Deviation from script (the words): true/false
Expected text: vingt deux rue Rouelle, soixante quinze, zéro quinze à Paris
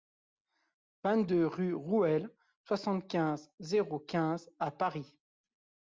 false